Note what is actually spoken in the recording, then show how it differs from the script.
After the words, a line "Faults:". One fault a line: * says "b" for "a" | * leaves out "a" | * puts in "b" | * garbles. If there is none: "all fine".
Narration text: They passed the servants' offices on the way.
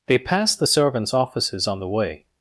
They passed the servants' offices on the way.
Faults:
all fine